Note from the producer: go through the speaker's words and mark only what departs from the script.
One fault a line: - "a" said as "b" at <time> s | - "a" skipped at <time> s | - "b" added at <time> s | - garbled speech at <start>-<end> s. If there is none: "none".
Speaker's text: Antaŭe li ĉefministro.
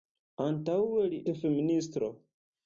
none